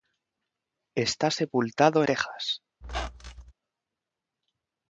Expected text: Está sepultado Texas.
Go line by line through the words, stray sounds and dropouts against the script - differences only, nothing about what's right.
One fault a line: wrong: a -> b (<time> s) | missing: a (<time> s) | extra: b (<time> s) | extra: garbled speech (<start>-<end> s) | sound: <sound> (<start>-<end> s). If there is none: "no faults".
sound: squeak (2.8-3.5 s)